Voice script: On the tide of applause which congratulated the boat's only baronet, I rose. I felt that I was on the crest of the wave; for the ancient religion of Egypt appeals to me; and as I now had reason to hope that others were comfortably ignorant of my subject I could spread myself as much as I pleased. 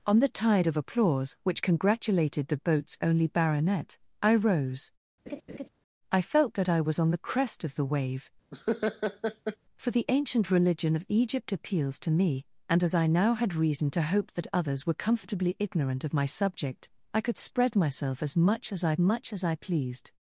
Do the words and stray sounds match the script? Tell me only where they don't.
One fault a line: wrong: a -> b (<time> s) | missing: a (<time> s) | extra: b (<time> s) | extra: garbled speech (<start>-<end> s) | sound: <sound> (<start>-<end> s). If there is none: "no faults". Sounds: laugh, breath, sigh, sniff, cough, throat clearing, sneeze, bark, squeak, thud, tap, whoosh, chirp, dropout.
sound: laugh (5.3-5.7 s)
sound: laugh (8.5-9.6 s)
extra: much as I (19.0 s)